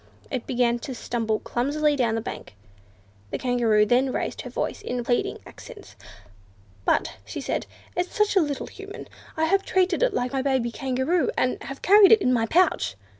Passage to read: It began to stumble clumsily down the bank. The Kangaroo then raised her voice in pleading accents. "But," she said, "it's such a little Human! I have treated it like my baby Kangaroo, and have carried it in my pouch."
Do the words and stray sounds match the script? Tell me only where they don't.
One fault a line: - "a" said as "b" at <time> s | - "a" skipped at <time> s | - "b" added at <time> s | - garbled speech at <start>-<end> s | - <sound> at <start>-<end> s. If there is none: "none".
none